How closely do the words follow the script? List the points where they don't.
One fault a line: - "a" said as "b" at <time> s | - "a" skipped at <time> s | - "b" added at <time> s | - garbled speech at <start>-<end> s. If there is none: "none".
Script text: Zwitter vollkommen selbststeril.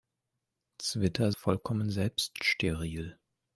none